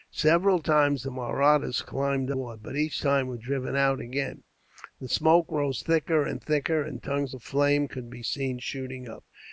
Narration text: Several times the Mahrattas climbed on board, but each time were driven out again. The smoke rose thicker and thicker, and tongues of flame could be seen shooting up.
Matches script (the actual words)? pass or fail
fail